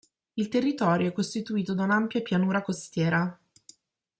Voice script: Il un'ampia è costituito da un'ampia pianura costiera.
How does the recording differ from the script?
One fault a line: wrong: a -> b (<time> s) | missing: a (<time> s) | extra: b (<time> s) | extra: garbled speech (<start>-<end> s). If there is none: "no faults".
wrong: un'ampia -> territorio (0.5 s)